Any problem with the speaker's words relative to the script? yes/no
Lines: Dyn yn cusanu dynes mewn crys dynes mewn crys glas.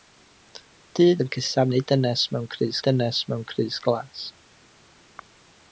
no